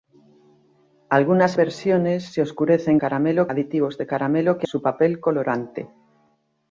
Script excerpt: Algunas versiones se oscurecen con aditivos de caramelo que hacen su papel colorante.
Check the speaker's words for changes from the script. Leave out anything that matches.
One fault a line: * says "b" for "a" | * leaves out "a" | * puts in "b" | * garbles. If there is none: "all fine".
* says "caramelo" for "con"
* leaves out "hacen"